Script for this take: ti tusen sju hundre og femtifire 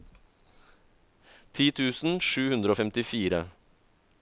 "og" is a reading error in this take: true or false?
false